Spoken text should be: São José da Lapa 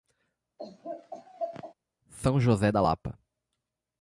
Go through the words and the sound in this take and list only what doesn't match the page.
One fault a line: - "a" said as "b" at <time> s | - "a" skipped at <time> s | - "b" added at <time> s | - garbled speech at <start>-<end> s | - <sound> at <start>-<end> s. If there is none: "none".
- laugh at 0.6-1.7 s